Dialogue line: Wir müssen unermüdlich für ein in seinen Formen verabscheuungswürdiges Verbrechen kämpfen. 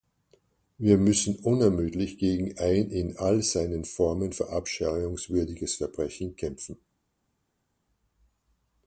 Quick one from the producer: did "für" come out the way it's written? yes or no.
no